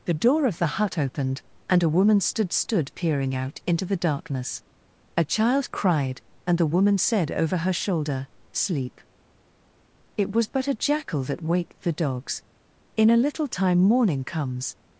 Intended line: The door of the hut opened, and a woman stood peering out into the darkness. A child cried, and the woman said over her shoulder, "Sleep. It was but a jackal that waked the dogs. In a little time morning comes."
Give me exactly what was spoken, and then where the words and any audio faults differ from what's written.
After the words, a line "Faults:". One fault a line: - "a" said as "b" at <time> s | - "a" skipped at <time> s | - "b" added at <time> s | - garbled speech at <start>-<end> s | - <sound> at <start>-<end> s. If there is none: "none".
The door of the hut opened, and a woman stood stood peering out into the darkness. A child cried, and the woman said over her shoulder, "Sleep. It was but a jackal that waked the dogs. In a little time morning comes."
Faults:
- "stood" added at 2.5 s